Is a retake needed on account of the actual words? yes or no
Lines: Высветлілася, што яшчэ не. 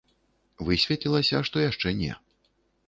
no